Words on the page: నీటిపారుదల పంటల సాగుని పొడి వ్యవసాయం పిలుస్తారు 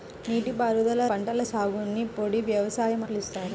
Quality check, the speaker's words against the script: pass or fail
pass